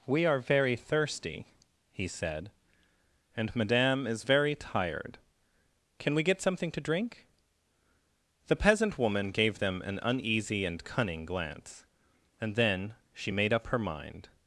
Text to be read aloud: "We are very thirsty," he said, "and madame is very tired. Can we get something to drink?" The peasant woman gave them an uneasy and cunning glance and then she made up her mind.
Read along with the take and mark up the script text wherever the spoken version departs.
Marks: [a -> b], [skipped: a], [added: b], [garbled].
"We are very thirsty," he said, "and madame is very tired. Can we get something to drink?" The peasant woman gave them an uneasy and cunning glance and then she made up her mind.